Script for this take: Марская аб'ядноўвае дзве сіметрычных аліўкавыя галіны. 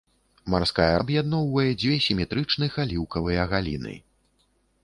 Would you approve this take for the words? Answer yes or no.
yes